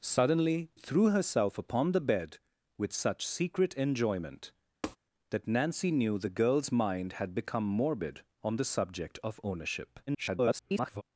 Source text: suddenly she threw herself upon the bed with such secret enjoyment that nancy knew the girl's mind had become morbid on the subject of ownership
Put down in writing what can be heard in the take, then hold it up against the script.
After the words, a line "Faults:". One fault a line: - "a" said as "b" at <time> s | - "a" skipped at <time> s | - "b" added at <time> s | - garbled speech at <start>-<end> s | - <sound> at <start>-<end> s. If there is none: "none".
suddenly threw herself upon the bed with such secret enjoyment that nancy knew the girl's mind had become morbid on the subject of ownership [garbled]
Faults:
- "she" skipped at 0.7 s
- tap at 4.8-5.0 s
- garbled speech at 10.1-11.0 s